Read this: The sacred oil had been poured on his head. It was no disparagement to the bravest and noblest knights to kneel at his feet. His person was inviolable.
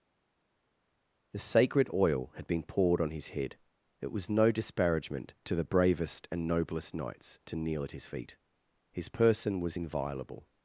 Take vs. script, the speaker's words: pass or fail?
pass